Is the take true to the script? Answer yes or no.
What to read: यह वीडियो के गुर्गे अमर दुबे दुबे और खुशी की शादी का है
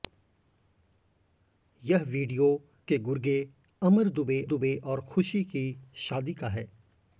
yes